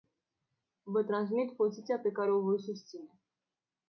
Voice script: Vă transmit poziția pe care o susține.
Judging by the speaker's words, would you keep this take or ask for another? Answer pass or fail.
fail